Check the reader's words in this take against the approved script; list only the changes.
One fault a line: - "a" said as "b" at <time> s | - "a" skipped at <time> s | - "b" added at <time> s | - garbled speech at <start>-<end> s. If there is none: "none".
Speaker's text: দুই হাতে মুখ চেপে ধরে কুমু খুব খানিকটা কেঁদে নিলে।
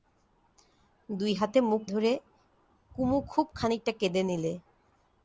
- "চেপে" skipped at 1.8 s